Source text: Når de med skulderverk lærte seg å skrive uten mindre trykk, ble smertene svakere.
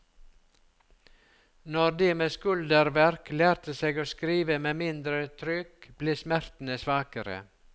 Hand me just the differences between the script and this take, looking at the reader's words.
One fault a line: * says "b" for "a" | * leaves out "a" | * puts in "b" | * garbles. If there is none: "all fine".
* says "med" for "uten"